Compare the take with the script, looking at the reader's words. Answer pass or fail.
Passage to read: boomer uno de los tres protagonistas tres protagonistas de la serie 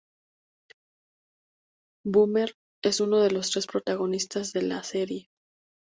fail